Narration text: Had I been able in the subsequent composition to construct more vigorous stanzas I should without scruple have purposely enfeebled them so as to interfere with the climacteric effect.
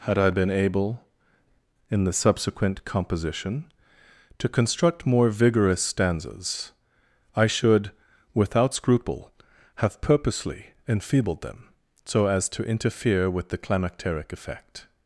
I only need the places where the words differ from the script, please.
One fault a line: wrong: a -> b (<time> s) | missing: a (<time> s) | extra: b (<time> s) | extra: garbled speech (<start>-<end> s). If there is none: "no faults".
no faults